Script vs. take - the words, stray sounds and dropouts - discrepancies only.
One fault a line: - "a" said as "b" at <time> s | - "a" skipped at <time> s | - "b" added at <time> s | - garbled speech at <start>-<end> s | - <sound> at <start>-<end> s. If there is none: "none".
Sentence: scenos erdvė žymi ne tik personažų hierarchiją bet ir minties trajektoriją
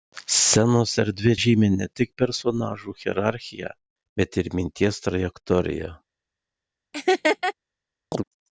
- laugh at 6.9-7.5 s
- chirp at 8.1-8.2 s